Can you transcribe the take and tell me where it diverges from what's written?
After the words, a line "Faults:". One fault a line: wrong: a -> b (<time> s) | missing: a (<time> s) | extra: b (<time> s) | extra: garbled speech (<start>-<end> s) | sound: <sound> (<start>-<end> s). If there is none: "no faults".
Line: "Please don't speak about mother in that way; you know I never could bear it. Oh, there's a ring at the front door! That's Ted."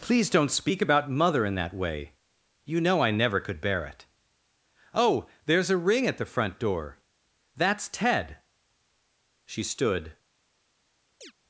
"Please don't speak about mother in that way; you know I never could bear it. Oh, there's a ring at the front door! That's Ted." She stood
Faults:
extra: She stood (9.4 s)
sound: chirp (11.2-11.3 s)